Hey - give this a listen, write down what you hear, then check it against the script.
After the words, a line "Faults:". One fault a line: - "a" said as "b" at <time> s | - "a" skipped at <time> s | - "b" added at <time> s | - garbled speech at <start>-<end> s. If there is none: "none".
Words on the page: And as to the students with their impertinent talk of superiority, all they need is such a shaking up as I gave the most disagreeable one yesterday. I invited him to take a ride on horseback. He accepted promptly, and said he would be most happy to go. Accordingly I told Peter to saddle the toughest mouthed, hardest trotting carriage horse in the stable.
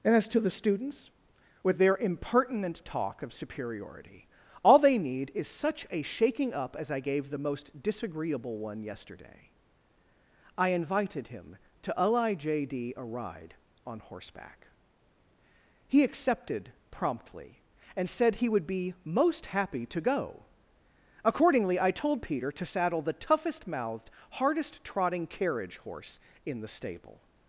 And as to the students with their impertinent talk of superiority, all they need is such a shaking up as I gave the most disagreeable one yesterday. I invited him to lijd a ride on horseback. He accepted promptly, and said he would be most happy to go. Accordingly I told Peter to saddle the toughest mouthed, hardest trotting carriage horse in the stable.
Faults:
- "take" said as "lijd" at 12.0 s